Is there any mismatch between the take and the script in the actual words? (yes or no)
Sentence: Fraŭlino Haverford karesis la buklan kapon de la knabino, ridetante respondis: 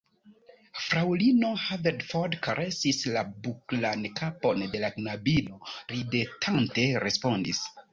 no